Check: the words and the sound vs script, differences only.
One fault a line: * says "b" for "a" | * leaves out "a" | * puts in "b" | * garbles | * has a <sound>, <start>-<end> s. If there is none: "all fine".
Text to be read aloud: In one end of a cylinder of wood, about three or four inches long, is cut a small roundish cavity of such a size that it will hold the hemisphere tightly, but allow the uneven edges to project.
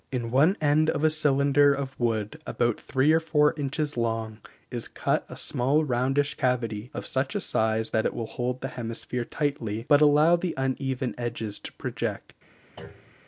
* has a thud, 12.8-13.2 s